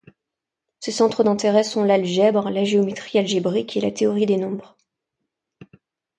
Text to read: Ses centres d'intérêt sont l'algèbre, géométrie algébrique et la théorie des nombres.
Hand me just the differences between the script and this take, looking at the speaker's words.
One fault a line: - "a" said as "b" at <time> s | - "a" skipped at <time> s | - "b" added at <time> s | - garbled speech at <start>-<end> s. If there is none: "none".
- "la" added at 2.5 s